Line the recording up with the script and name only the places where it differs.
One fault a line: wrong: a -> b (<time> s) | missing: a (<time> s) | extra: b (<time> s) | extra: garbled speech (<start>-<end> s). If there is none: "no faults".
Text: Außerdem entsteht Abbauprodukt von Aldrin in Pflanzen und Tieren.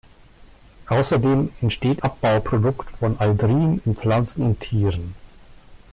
no faults